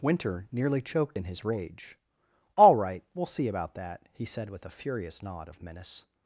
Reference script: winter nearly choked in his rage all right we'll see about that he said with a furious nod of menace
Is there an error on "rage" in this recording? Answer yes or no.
no